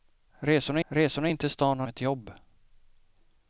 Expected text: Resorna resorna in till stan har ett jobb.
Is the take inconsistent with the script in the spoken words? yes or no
no